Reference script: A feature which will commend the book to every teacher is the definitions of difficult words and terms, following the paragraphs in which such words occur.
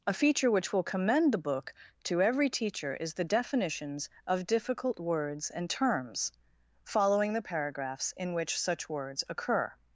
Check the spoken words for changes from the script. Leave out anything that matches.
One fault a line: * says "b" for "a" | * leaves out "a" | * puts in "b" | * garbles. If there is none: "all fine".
all fine